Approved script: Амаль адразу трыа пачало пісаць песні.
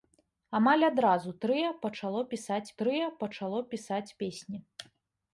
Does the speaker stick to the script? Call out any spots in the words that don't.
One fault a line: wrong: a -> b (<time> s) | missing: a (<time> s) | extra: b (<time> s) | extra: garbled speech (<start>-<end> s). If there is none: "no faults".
extra: трыа пачало пісаць (2.8 s)